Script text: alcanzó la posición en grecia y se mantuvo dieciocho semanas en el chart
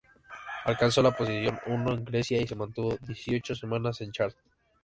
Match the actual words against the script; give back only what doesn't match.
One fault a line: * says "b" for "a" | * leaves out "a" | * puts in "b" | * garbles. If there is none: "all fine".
* puts in "uno"